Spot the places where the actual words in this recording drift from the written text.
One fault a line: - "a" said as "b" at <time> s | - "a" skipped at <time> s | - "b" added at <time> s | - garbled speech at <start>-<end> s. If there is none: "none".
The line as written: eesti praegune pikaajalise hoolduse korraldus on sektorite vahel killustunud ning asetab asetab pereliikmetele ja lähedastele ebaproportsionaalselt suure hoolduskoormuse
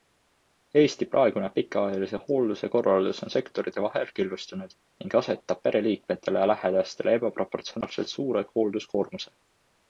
- "asetab" skipped at 5.6 s